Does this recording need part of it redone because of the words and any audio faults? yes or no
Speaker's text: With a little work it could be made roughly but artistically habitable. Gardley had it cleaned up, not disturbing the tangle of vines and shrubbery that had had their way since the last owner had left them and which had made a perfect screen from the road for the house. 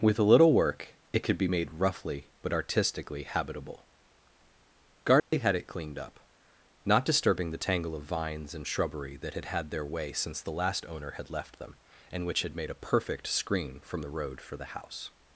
yes